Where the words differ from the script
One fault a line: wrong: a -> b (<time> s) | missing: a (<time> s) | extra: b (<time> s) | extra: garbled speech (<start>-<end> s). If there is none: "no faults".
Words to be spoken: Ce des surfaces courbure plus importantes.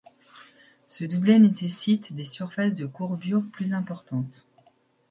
extra: doublet nécessite (1.0 s)
extra: de (2.7 s)